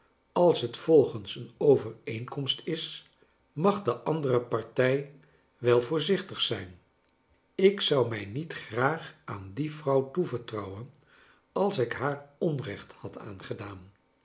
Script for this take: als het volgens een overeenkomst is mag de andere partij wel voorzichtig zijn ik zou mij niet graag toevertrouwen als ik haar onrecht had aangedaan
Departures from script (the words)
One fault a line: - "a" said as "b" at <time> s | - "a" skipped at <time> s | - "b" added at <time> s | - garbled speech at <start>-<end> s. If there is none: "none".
- "aan die vrouw" added at 9.2 s